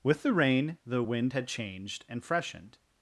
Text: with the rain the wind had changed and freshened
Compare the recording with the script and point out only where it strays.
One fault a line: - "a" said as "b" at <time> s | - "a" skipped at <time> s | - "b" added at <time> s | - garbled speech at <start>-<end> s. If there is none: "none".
none